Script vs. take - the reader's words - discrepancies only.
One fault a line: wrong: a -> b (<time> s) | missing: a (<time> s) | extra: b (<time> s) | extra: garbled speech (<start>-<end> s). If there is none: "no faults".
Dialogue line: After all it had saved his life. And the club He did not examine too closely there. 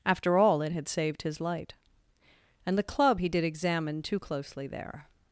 wrong: life -> light (1.4 s)
missing: not (3.4 s)